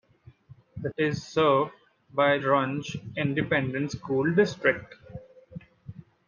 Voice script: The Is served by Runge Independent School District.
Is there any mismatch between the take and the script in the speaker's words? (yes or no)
no